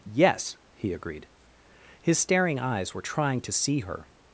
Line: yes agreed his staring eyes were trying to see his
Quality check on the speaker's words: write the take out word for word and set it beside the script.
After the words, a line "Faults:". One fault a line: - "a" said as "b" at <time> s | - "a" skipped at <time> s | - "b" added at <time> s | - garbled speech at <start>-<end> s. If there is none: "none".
yes he agreed his staring eyes were trying to see her
Faults:
- "he" added at 0.7 s
- "his" said as "her" at 3.8 s